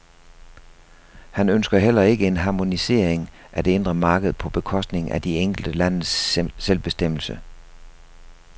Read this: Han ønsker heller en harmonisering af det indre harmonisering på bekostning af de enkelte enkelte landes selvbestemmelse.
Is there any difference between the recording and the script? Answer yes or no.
yes